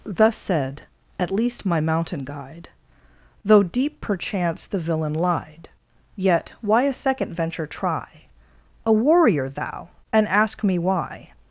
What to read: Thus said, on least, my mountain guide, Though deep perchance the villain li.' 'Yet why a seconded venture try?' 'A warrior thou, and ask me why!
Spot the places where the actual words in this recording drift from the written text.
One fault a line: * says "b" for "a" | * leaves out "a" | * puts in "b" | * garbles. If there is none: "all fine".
* says "at" for "on"
* says "lied" for "li"
* says "second" for "seconded"